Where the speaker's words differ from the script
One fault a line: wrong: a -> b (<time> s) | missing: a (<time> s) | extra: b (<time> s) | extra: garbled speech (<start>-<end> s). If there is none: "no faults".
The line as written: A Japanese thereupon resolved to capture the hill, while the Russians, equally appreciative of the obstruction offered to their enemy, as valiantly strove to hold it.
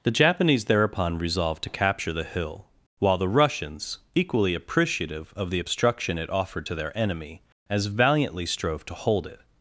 wrong: A -> The (0.0 s)
extra: it (6.2 s)